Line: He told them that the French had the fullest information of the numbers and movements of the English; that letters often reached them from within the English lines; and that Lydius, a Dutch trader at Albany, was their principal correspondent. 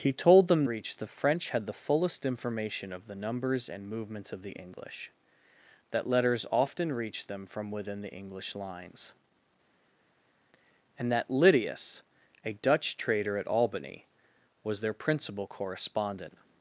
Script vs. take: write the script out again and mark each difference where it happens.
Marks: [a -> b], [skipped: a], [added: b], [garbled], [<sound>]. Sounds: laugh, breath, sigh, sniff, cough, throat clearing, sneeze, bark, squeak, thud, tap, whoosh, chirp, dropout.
He told them [that -> reached] the French had the fullest information of the numbers and movements of the English; that letters often reached them from within the English lines; and that Lydius, a Dutch trader at Albany, was their principal correspondent.